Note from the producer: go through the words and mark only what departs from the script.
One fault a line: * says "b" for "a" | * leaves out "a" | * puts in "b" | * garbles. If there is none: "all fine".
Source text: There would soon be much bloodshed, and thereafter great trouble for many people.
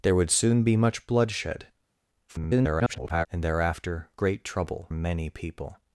* garbles
* leaves out "for"